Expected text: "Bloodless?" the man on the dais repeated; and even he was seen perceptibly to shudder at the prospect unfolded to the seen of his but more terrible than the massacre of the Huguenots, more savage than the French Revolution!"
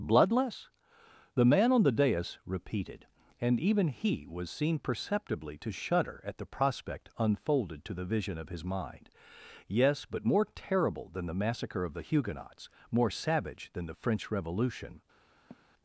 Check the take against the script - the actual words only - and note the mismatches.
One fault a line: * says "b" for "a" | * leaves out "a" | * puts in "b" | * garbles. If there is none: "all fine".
* says "vision" for "seen"
* puts in "mind Yes"